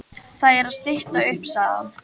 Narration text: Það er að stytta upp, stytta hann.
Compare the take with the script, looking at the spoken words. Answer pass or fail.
fail